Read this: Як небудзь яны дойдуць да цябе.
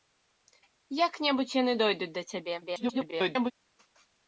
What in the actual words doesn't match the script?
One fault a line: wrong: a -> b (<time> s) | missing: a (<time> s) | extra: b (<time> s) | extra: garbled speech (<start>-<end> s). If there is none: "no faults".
extra: garbled speech (2.6-3.5 s)